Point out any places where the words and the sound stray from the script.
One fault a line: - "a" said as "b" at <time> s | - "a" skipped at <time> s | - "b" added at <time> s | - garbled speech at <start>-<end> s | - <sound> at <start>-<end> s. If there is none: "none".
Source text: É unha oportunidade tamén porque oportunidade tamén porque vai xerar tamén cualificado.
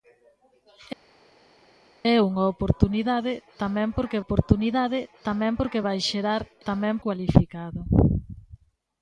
none